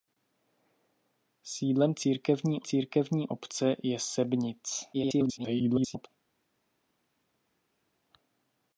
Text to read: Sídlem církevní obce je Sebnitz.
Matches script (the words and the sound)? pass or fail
fail